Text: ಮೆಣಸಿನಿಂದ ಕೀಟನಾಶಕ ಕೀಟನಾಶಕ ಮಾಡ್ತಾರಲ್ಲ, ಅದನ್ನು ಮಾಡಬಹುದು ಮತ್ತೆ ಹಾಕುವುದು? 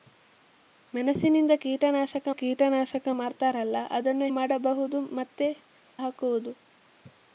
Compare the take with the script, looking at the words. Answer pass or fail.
pass